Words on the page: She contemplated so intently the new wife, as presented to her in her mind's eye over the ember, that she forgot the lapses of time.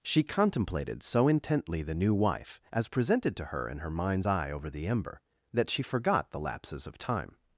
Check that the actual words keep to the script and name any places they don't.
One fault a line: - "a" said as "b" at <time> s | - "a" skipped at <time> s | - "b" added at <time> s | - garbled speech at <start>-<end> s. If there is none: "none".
none